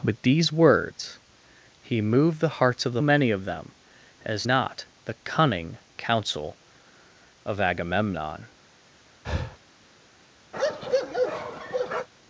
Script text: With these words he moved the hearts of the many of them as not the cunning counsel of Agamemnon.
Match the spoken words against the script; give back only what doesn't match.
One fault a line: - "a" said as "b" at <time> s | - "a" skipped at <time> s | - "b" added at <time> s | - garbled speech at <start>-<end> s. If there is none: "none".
none